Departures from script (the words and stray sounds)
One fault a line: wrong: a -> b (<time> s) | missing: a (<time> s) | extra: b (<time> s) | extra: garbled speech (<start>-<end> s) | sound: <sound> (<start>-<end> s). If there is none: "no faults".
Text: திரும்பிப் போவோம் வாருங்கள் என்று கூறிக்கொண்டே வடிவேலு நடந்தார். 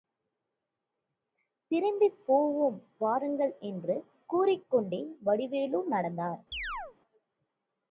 sound: chirp (6.5-7.0 s)